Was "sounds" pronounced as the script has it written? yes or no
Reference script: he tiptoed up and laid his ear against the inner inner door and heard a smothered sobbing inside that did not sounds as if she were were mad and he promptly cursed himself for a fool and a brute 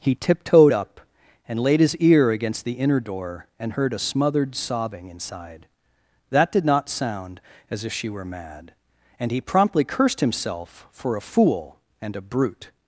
no